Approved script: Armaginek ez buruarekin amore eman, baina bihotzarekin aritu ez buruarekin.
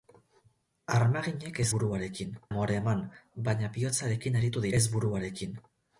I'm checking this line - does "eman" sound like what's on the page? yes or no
yes